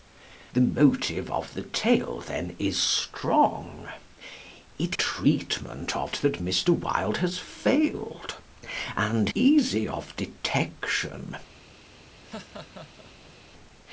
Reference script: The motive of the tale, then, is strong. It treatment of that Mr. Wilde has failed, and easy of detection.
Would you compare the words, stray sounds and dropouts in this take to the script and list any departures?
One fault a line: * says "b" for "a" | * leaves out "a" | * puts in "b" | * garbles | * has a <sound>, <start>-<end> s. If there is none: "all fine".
* has a laugh, 12.2-13.3 s